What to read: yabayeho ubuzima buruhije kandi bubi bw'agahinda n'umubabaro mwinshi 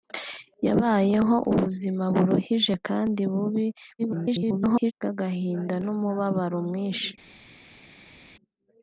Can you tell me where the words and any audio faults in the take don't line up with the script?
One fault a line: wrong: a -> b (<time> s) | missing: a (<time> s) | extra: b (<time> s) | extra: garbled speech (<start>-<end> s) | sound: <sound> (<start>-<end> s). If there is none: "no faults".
extra: garbled speech (4.0-4.9 s)